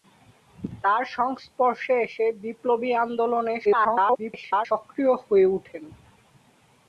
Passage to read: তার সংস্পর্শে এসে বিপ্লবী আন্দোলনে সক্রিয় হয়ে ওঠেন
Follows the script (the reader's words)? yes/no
no